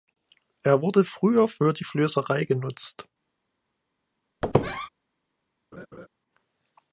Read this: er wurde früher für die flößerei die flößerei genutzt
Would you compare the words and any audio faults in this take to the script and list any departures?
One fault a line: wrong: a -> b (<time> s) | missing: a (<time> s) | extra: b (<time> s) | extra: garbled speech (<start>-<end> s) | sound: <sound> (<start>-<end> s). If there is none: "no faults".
missing: die flößerei (2.4 s)
sound: squeak (4.4-4.9 s)
sound: laugh (5.7-6.1 s)